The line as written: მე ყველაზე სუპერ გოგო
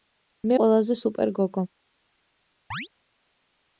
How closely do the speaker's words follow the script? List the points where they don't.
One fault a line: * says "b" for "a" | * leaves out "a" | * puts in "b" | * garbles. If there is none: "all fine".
all fine